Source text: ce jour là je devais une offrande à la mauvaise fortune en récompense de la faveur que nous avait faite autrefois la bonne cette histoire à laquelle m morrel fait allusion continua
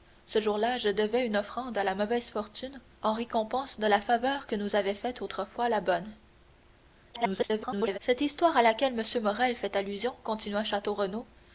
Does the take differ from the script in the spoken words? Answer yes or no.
yes